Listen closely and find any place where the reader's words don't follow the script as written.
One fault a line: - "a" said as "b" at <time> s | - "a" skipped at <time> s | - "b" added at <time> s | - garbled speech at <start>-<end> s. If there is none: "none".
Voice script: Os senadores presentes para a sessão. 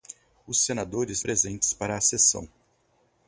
none